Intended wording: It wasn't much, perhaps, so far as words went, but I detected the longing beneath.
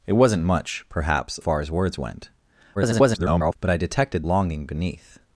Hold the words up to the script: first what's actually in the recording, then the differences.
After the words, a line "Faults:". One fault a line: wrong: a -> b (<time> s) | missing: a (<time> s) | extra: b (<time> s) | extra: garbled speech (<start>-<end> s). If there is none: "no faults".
It wasn't much, perhaps, far as words went, [garbled] but I detected longing beneath.
Faults:
missing: so (1.4 s)
extra: garbled speech (2.8-3.6 s)
missing: the (4.2 s)